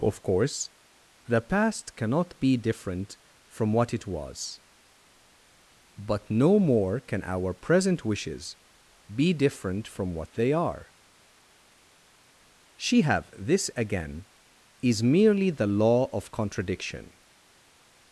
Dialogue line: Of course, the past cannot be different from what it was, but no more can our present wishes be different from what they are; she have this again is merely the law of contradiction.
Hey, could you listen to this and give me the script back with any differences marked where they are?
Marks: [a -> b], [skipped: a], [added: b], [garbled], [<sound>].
Of course, the past cannot be different from what it was, but no more can our present wishes be different from what they are; she have this again is merely the law of contradiction.